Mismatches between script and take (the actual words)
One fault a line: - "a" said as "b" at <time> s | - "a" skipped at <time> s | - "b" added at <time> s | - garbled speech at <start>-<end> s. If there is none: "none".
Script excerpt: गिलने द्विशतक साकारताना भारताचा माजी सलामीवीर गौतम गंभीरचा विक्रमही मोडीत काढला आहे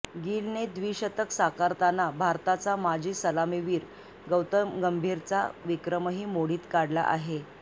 none